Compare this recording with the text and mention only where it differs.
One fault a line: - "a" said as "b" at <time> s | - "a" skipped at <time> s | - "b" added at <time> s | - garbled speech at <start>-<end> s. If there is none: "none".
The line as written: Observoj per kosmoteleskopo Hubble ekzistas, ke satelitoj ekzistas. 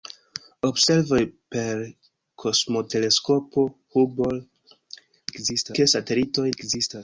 none